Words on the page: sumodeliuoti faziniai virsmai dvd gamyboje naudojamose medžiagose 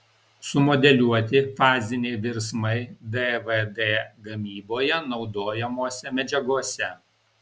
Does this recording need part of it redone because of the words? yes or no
no